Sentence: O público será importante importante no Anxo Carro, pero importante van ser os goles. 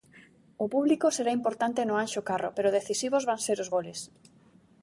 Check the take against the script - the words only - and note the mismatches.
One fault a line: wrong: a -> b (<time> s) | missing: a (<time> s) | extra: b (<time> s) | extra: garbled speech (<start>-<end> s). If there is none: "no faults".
missing: importante (1.8 s)
wrong: importante -> decisivos (2.8 s)